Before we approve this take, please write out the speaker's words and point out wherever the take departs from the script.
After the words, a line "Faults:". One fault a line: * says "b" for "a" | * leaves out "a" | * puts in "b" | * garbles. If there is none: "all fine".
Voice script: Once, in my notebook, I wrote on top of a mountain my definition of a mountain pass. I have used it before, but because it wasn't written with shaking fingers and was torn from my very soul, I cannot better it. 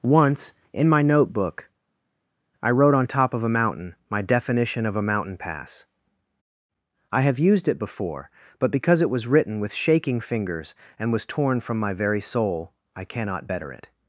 Once, in my notebook, I wrote on top of a mountain my definition of a mountain pass. I have used it before, but because it was written with shaking fingers and was torn from my very soul, I cannot better it.
Faults:
* says "was" for "wasn't"